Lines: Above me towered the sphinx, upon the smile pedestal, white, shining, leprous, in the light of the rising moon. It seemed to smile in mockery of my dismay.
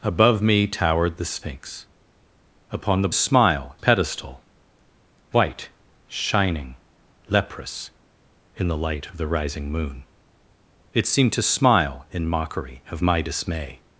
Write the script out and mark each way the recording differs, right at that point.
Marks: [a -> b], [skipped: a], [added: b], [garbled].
Above me towered the sphinx, upon the smile pedestal, white, shining, leprous, in the light of the rising moon. It seemed to smile in mockery of my dismay.